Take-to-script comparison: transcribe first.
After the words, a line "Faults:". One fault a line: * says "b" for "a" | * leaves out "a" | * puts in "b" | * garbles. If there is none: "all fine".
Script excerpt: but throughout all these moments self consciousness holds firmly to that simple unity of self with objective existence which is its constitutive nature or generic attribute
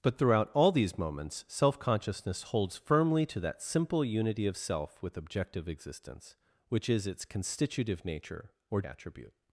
but throughout all these moments self consciousness holds firmly to that simple unity of self with objective existence which is its constitutive nature or attribute
Faults:
* leaves out "generic"